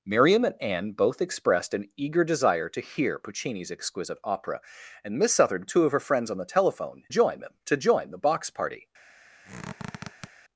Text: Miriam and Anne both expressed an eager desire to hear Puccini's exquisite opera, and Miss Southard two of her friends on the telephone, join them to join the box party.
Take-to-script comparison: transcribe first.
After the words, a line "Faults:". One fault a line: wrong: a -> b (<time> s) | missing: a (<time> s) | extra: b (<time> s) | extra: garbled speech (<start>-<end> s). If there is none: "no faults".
Miriam and Anne both expressed an eager desire to hear Puccini's exquisite opera, and Miss Southard two of her friends on the telephone, join them to join the box party.
Faults:
no faults